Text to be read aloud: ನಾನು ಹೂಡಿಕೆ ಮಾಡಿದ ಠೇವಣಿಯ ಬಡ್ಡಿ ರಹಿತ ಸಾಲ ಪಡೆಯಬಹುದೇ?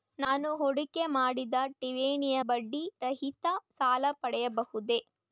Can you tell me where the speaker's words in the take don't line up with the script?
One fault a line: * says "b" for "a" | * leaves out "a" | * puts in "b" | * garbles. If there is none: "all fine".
all fine